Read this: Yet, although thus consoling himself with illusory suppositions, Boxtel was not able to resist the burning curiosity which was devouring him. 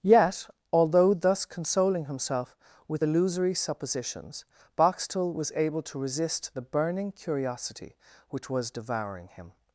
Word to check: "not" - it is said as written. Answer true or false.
false